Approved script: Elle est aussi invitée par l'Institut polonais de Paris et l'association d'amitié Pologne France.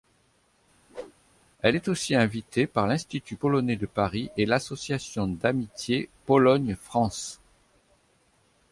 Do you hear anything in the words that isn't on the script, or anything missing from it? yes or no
no